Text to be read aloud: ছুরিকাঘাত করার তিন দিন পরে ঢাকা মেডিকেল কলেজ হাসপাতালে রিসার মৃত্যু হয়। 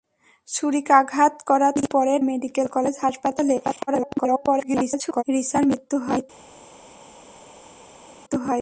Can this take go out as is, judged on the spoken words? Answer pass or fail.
fail